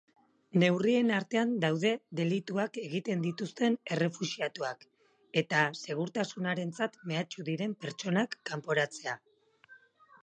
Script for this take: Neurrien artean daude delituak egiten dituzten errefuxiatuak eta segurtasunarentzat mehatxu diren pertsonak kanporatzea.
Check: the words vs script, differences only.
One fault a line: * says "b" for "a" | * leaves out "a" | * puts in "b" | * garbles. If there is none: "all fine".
all fine